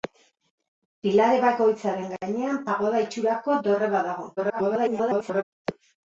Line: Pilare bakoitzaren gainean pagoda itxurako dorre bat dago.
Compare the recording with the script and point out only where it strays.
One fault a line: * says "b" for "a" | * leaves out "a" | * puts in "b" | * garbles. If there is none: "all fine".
* garbles